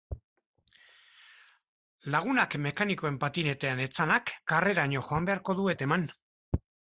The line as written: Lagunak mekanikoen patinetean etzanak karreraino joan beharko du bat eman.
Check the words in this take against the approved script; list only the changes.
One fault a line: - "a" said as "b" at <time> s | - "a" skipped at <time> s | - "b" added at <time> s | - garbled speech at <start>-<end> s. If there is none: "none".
none